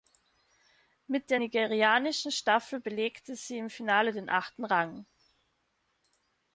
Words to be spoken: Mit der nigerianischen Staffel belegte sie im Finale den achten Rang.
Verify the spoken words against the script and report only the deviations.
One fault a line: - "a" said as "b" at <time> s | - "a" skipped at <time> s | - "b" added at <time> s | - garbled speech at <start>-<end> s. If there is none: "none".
none